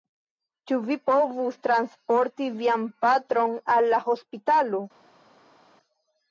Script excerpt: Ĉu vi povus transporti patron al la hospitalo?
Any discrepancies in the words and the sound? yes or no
yes